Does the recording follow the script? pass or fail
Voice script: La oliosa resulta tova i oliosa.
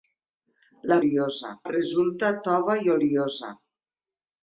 pass